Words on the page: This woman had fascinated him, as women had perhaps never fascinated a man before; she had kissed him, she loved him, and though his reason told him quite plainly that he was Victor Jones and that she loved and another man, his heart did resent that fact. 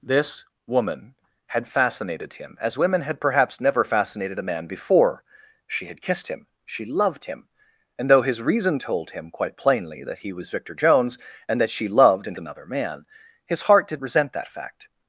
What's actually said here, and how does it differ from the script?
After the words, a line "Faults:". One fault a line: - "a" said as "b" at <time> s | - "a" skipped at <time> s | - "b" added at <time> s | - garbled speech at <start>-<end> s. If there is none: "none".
This woman had fascinated him, as women had perhaps never fascinated a man before; she had kissed him, she loved him, and though his reason told him quite plainly that he was Victor Jones and that she loved and another man, his heart did resent that fact.
Faults:
none